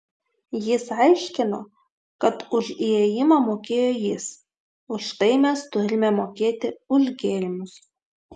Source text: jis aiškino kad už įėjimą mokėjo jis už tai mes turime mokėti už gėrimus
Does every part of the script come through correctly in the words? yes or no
yes